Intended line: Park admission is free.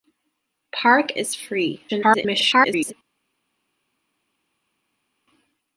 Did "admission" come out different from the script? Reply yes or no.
yes